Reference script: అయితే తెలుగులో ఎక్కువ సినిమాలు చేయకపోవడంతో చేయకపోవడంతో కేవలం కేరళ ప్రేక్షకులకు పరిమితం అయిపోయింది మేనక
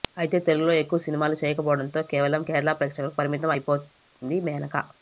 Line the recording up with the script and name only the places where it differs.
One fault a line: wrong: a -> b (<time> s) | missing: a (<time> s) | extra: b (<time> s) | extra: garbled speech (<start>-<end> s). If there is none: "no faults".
missing: చేయకపోవడంతో (2.0 s)